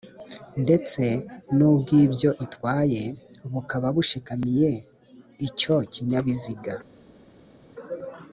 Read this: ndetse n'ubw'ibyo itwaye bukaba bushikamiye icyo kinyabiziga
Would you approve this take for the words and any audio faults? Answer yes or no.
yes